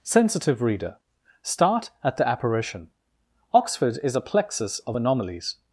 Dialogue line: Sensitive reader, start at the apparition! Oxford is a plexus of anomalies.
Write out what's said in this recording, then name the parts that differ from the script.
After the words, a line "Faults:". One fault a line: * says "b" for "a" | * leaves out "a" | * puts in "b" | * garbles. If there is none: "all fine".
Sensitive reader, start at the apparition! Oxford is a plexus of anomalies.
Faults:
all fine